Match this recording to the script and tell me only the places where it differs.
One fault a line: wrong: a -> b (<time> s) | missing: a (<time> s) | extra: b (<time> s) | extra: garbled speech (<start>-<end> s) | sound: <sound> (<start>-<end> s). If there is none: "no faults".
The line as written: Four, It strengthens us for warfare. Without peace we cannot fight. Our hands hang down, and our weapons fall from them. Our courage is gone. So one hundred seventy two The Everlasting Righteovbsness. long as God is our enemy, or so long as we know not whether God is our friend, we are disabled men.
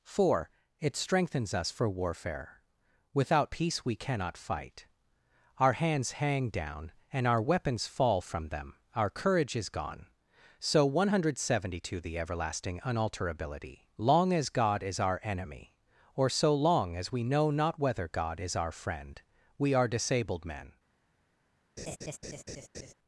wrong: Righteovbsness -> Unalterability (12.8 s)
sound: laugh (21.8-22.9 s)